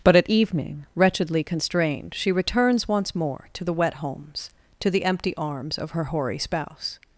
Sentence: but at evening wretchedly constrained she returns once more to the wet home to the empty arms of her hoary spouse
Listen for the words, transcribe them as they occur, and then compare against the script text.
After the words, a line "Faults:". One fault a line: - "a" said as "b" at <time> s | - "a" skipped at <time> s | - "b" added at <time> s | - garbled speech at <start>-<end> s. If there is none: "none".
but at evening wretchedly constrained she returns once more to the wet homes to the empty arms of her hoary spouse
Faults:
- "home" said as "homes" at 3.9 s